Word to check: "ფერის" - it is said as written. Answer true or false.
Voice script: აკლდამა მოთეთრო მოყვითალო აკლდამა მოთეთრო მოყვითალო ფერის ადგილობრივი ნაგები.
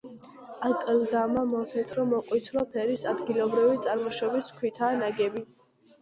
false